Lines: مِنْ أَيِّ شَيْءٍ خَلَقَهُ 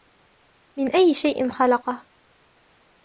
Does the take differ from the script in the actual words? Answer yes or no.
no